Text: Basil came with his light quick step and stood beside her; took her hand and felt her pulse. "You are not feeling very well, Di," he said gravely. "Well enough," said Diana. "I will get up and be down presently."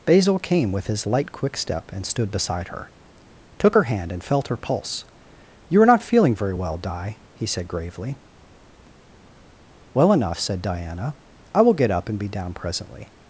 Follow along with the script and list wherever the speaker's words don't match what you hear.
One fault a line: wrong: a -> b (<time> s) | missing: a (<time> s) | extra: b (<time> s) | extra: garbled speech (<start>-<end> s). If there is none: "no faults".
no faults